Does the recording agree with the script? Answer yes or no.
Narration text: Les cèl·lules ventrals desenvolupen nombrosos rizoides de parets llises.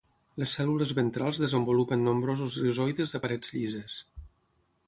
yes